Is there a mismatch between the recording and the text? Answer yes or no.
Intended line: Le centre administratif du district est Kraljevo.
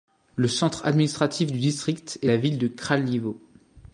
yes